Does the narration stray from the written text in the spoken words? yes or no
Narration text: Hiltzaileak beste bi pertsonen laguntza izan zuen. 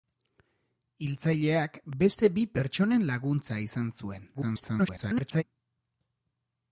yes